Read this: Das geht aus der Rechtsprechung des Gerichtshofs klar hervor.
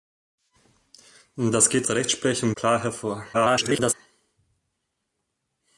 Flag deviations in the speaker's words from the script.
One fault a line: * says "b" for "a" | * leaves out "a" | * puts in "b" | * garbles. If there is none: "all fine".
* leaves out "aus"
* leaves out "des Gerichtshofs"
* garbles